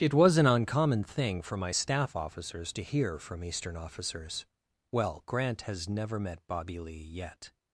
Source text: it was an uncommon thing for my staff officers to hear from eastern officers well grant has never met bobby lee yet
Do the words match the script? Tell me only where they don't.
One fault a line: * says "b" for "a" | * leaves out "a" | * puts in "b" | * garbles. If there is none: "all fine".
all fine